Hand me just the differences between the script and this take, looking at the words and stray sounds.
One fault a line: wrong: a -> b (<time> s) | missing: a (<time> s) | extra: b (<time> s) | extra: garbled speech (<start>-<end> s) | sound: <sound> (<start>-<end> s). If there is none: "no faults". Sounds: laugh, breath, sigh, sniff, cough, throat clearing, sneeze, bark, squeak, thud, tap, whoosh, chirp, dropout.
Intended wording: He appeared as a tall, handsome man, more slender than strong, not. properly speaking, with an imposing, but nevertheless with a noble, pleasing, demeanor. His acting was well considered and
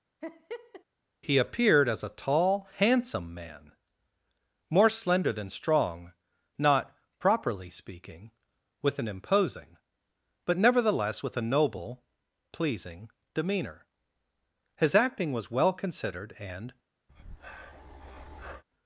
sound: laugh (0.2-0.8 s)
sound: breath (17.1-18.6 s)